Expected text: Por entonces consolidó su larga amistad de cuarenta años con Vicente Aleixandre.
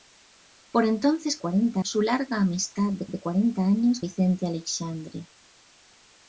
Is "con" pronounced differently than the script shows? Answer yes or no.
yes